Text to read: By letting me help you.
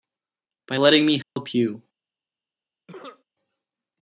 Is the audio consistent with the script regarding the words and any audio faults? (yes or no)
no